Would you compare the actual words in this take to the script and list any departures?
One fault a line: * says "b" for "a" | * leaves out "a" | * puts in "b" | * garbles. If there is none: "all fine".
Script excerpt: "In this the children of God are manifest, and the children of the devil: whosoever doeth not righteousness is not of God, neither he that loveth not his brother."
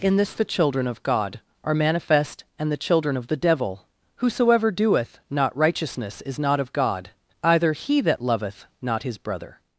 * says "either" for "neither"